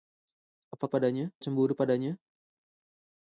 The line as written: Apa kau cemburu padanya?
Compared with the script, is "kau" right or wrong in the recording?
wrong